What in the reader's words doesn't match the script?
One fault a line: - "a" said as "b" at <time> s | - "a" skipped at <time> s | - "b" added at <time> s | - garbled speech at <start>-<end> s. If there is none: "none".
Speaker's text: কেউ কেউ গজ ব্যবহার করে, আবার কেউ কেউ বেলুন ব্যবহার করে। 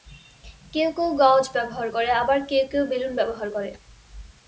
none